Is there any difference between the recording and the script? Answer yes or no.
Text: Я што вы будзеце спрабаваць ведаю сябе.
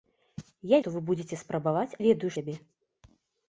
no